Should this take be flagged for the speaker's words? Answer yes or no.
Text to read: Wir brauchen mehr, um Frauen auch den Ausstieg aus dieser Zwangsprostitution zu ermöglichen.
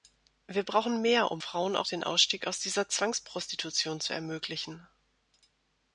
no